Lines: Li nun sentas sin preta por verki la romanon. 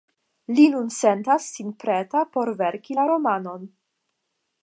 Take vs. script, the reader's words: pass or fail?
pass